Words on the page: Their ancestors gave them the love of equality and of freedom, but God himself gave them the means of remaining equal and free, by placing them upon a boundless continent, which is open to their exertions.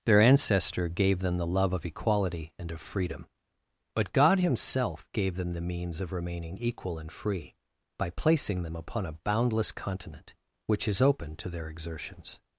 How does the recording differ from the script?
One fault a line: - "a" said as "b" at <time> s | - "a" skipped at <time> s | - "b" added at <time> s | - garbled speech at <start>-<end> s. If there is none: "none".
- "ancestors" said as "ancestor" at 0.2 s